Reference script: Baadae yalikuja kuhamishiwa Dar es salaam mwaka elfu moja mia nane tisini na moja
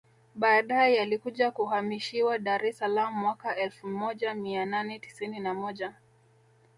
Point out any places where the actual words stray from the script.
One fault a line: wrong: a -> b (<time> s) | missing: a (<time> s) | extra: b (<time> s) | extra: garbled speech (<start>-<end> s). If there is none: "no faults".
no faults